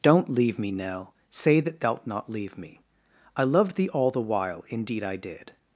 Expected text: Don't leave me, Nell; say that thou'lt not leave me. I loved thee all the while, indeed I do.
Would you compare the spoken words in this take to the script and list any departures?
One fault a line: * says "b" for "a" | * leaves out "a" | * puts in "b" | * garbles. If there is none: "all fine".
* says "did" for "do"